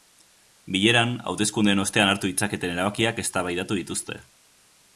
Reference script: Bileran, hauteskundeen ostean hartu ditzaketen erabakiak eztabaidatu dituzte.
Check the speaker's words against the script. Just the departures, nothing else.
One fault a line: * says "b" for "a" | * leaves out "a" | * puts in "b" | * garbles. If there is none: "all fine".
all fine